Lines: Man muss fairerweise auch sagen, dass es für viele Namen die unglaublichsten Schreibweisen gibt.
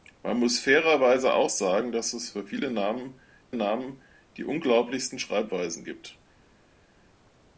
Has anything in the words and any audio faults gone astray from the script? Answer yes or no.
yes